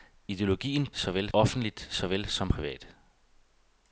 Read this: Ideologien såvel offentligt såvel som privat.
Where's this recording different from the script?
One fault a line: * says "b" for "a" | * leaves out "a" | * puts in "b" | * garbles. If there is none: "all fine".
all fine